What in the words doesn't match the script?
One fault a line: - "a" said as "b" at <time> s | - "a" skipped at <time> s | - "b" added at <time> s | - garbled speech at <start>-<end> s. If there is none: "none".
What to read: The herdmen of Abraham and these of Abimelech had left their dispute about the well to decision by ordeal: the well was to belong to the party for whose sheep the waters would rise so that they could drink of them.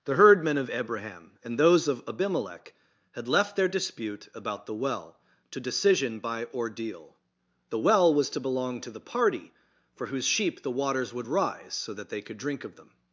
- "these" said as "those" at 1.6 s